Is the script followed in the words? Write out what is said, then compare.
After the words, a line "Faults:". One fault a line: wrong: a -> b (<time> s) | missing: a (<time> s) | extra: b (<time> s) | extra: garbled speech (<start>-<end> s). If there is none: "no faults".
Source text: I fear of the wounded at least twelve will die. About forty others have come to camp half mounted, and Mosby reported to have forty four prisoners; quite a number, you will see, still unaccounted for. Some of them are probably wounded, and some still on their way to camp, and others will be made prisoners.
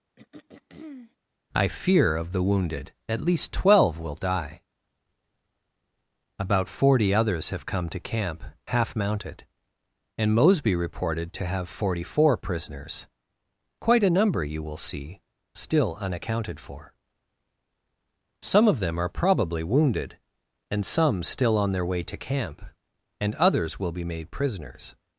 I fear of the wounded at least twelve will die. About forty others have come to camp half mounted, and Mosby reported to have forty four prisoners; quite a number, you will see, still unaccounted for. Some of them are probably wounded, and some still on their way to camp, and others will be made prisoners.
Faults:
no faults